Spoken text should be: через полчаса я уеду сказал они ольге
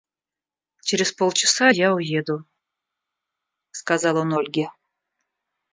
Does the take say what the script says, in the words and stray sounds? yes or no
no